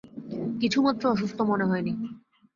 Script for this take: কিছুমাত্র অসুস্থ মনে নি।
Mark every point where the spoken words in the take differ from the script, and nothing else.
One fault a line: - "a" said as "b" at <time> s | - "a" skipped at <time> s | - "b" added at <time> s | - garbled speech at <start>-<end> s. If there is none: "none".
- "হয়" added at 1.6 s